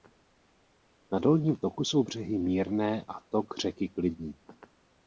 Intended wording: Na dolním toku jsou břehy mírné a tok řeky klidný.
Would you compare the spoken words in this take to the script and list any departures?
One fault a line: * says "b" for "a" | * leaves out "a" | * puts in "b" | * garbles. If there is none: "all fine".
all fine